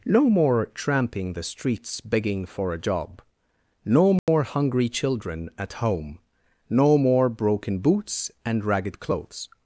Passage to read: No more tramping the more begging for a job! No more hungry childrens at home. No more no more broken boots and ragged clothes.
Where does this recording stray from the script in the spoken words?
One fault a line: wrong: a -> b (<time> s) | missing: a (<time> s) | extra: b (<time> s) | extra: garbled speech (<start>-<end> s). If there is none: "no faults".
wrong: more -> streets (1.4 s)
wrong: childrens -> children (4.9 s)
missing: no more (7.3 s)